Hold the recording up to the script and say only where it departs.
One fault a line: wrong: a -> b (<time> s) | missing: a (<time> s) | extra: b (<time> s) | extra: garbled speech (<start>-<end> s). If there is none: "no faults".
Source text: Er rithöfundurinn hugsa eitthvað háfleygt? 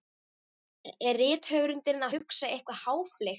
no faults